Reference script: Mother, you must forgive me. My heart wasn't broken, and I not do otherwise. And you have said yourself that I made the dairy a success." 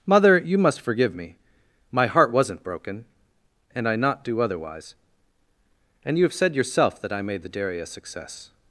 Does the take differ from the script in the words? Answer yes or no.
no